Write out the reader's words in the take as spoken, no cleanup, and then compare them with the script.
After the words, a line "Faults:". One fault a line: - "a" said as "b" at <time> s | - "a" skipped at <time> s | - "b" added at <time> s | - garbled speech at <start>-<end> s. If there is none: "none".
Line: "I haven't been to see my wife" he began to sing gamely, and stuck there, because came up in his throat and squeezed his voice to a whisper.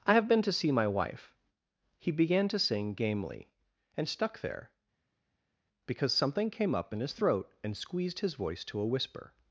"I have been to see my wife" he began to sing gamely, and stuck there, because something came up in his throat and squeezed his voice to a whisper.
Faults:
- "haven't" said as "have" at 0.1 s
- "something" added at 6.1 s